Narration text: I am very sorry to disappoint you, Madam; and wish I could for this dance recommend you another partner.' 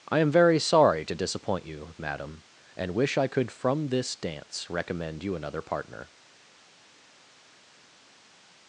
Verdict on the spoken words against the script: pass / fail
fail